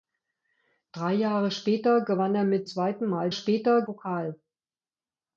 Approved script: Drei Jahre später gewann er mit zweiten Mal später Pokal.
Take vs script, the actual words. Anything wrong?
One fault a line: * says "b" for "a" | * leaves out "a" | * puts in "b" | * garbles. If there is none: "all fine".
all fine